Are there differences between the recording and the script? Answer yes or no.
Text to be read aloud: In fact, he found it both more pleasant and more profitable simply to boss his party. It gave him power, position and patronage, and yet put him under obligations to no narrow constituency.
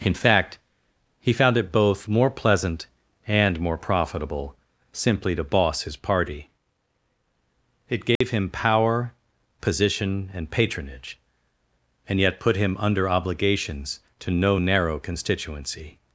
no